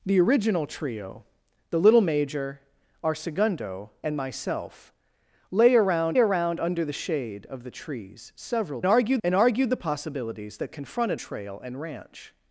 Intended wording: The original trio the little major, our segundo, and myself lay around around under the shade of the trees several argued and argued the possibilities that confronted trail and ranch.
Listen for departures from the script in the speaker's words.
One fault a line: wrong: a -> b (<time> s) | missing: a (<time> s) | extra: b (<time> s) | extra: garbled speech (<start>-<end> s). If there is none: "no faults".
no faults